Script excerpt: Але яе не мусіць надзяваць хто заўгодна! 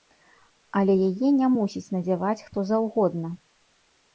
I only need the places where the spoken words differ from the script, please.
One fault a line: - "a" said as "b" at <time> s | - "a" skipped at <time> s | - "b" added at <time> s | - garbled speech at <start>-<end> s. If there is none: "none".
none